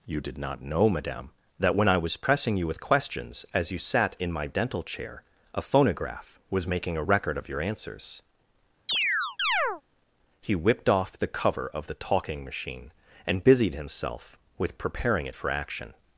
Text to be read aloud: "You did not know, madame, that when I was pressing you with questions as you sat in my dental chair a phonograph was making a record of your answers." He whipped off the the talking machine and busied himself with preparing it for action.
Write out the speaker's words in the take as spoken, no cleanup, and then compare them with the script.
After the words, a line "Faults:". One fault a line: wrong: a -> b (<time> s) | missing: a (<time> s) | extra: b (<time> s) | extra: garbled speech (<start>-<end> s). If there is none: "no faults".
"You did not know, madame, that when I was pressing you with questions as you sat in my dental chair a phonograph was making a record of your answers." He whipped off the cover of the talking machine and busied himself with preparing it for action.
Faults:
extra: cover of (11.3 s)